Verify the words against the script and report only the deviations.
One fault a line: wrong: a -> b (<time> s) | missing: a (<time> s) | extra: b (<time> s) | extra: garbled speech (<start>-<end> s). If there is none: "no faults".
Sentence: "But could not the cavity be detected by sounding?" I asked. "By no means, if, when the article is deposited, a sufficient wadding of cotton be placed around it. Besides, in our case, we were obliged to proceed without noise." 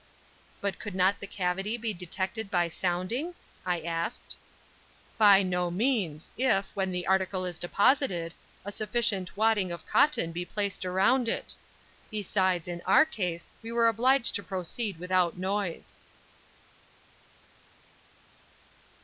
no faults